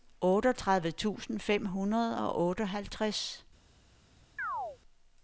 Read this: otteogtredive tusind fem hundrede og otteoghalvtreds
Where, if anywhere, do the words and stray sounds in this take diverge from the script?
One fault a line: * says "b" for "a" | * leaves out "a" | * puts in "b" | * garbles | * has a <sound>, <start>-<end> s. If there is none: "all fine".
* has a chirp, 4.4-4.8 s